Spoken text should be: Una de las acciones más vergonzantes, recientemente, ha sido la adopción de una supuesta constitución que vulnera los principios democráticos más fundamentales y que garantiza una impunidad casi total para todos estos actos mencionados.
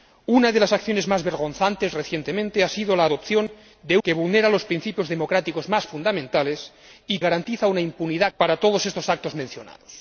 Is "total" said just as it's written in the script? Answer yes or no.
no